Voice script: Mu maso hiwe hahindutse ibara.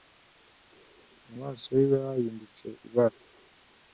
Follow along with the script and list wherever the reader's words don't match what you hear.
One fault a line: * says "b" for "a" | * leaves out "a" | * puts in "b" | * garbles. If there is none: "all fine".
all fine